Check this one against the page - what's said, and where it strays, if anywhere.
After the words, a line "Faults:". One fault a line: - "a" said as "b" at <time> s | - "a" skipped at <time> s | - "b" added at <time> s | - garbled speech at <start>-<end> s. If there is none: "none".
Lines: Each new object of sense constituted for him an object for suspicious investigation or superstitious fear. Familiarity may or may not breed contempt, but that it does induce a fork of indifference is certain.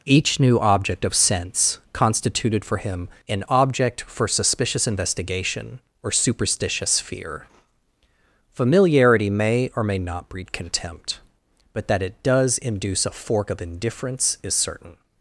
Each new object of sense constituted for him an object for suspicious investigation or superstitious fear. Familiarity may or may not breed contempt, but that it does induce a fork of indifference is certain.
Faults:
none